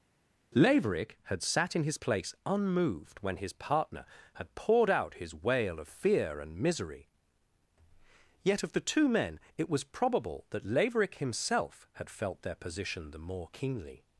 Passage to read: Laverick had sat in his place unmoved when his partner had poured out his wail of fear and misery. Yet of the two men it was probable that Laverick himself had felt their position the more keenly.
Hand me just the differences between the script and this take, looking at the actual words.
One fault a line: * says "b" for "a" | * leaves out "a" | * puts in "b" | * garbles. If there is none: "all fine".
all fine